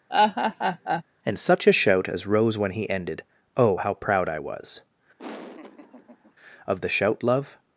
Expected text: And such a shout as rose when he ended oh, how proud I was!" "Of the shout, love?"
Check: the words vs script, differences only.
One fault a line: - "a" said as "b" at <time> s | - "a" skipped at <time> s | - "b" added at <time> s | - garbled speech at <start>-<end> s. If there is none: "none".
none